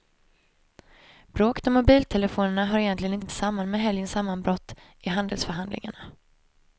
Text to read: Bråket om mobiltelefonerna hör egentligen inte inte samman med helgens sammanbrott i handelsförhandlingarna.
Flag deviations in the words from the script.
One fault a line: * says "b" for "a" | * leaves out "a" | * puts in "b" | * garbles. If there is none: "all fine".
all fine